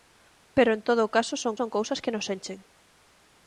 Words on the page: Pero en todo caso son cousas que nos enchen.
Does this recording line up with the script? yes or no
no